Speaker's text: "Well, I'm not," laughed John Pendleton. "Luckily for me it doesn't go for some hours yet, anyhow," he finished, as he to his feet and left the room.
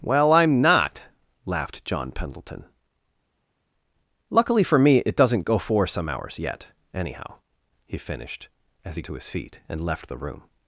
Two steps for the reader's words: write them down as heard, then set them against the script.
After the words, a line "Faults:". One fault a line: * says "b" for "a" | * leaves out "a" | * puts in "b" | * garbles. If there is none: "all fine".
"Well, I'm not," laughed John Pendleton. "Luckily for me it doesn't go for some hours yet, anyhow," he finished, as he to his feet and left the room.
Faults:
all fine